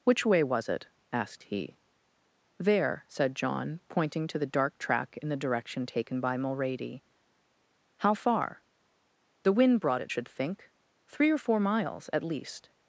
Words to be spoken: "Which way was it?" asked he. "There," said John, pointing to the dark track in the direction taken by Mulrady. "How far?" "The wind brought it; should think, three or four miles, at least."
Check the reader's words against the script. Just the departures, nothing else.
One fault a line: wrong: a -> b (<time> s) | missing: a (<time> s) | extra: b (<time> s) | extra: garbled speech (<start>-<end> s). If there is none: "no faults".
no faults